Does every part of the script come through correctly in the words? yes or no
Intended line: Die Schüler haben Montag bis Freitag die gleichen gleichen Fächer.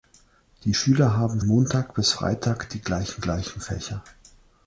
yes